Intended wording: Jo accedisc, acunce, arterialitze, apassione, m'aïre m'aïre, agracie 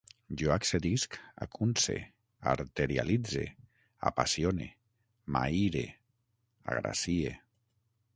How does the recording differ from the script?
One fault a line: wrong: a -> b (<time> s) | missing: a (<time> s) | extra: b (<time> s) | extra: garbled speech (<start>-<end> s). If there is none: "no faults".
missing: m'aïre (5.8 s)